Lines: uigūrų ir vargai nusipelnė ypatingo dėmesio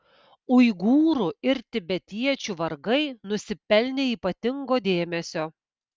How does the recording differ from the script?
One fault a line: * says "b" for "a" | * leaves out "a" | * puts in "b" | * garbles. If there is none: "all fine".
* puts in "tibetiečių"